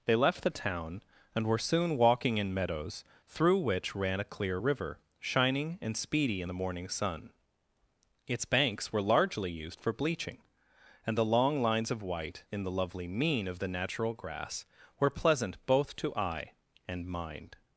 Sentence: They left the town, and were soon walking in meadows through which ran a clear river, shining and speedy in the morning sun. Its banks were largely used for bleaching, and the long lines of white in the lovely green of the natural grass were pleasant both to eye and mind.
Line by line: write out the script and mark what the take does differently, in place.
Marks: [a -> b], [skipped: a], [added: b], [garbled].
They left the town, and were soon walking in meadows through which ran a clear river, shining and speedy in the morning sun. Its banks were largely used for bleaching, and the long lines of white in the lovely [green -> mean] of the natural grass were pleasant both to eye and mind.